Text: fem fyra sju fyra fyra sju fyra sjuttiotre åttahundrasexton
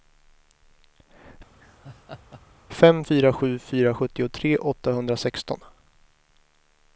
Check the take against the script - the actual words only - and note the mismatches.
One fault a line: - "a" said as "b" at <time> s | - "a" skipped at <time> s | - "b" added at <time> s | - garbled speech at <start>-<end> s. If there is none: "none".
- "fyra sju fyra" skipped at 3.9 s